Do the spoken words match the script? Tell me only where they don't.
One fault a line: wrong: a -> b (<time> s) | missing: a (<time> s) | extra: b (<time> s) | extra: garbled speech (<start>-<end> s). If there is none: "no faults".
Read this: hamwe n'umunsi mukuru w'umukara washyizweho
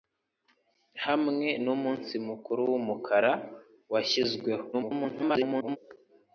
extra: garbled speech (4.7-5.8 s)